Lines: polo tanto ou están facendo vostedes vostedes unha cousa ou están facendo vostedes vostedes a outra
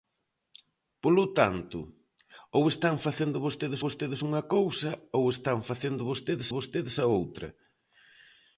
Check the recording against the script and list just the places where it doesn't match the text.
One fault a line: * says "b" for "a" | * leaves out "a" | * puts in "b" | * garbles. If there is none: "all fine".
all fine